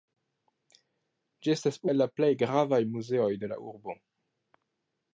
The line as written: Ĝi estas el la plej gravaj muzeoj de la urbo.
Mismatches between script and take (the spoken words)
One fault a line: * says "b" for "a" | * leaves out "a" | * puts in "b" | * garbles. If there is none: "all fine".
all fine